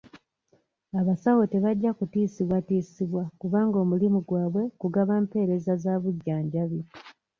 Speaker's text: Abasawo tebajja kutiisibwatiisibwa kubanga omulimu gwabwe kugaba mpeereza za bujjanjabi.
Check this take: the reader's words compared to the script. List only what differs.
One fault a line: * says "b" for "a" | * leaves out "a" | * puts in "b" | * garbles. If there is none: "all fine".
all fine